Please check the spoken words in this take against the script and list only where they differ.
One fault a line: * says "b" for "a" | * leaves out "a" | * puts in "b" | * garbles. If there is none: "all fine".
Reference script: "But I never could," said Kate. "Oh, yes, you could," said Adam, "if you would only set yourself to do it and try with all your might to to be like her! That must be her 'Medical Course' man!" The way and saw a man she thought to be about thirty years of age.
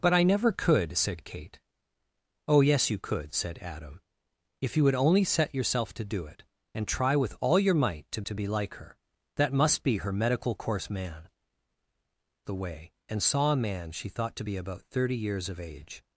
all fine